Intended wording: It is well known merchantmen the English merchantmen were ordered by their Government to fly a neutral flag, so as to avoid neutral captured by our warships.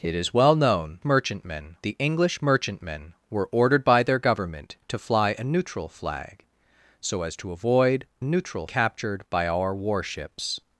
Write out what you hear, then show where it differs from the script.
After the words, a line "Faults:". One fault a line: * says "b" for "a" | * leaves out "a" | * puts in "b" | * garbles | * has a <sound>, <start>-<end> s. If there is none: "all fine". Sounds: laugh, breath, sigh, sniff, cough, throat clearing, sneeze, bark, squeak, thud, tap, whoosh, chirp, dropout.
It is well known merchantmen the English merchantmen were ordered by their Government to fly a neutral flag, so as to avoid neutral captured by our warships.
Faults:
all fine